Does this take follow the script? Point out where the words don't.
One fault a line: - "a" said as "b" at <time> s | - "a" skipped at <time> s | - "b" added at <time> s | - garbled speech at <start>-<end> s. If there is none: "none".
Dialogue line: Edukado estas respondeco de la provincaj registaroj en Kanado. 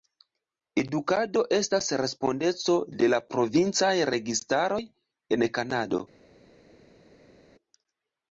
none